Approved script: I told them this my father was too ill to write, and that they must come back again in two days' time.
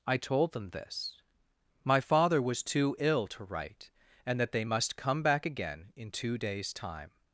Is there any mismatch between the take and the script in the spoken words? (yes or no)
no